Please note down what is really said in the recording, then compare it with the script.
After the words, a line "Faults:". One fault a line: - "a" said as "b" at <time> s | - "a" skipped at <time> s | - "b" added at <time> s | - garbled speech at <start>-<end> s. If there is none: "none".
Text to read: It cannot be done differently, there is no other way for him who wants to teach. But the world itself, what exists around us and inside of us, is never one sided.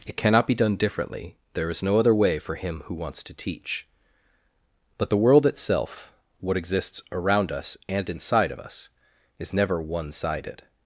It cannot be done differently, there is no other way for him who wants to teach. But the world itself, what exists around us and inside of us, is never one sided.
Faults:
none